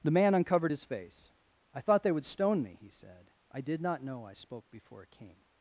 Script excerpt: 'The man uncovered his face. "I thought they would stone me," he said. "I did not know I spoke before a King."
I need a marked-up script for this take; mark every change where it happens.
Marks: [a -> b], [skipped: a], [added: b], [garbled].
'The man uncovered his face. "I thought they would stone me," he said. "I did not know I spoke before a King."